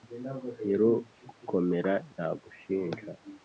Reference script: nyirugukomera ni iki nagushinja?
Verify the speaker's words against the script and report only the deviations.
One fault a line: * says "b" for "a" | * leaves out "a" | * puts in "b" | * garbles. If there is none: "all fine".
* leaves out "ni iki"